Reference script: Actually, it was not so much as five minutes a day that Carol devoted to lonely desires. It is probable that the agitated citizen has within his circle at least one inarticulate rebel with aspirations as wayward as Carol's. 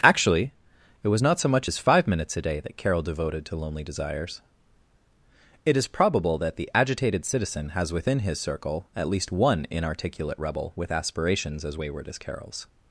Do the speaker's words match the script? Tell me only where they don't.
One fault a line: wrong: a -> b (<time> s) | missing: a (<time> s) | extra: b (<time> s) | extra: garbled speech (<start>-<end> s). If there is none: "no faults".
no faults